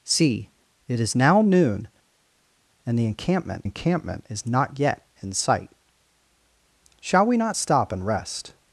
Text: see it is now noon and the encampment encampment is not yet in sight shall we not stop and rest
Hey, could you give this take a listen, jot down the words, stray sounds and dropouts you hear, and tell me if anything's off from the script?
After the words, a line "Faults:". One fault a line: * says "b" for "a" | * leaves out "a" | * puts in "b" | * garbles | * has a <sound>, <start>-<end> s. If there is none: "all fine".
see it is now noon and the encampment encampment is not yet in sight shall we not stop and rest
Faults:
all fine